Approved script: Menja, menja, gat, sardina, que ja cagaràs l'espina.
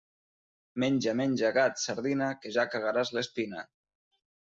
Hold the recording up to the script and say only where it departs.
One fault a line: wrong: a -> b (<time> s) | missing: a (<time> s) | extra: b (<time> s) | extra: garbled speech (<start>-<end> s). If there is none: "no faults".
no faults